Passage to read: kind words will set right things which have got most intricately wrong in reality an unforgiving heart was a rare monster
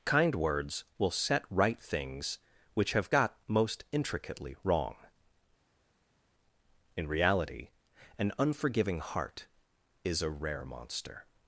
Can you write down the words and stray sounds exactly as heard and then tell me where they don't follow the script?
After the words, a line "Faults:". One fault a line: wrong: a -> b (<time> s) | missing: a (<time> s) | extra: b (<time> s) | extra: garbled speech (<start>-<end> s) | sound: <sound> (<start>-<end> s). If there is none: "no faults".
kind words will set right things which have got most intricately wrong in reality an unforgiving heart is a rare monster
Faults:
wrong: was -> is (10.0 s)